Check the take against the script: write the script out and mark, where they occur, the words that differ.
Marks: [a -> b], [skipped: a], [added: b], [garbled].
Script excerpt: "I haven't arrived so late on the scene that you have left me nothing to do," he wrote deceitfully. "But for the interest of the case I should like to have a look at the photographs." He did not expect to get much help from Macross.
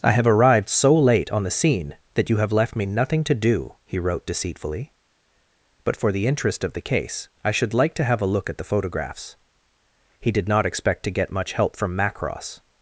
"I [haven't -> have] arrived so late on the scene that you have left me nothing to do," he wrote deceitfully. "But for the interest of the case I should like to have a look at the photographs." He did not expect to get much help from Macross.